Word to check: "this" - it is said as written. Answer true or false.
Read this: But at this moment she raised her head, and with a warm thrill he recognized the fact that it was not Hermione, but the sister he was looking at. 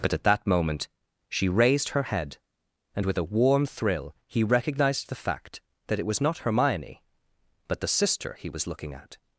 false